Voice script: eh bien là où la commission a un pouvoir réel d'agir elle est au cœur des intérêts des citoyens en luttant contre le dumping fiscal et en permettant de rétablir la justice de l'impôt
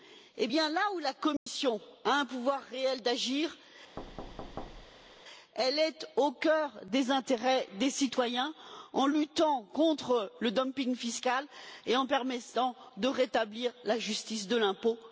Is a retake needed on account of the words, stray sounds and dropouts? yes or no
yes